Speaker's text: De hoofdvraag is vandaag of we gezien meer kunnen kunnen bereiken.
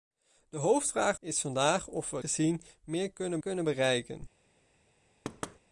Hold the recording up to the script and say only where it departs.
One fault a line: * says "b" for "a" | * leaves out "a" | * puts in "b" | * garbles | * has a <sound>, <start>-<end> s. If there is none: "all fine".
* has a thud, 5.2-5.6 s